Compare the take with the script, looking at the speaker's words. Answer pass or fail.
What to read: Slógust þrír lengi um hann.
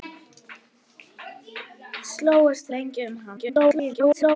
fail